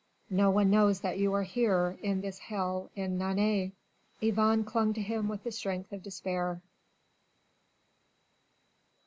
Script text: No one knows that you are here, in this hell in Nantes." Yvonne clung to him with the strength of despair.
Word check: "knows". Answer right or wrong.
right